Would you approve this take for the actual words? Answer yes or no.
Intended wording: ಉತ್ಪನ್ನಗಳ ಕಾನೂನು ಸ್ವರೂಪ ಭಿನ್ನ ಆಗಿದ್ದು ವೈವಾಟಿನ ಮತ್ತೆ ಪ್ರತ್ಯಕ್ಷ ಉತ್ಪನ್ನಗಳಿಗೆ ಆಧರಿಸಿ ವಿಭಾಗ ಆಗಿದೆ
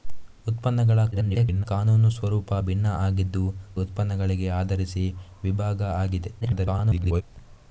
no